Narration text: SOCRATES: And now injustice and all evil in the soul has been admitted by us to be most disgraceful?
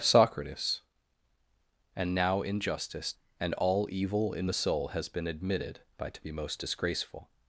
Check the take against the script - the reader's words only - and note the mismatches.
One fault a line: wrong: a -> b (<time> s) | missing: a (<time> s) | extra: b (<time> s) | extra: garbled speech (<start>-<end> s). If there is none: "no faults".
missing: us (6.1 s)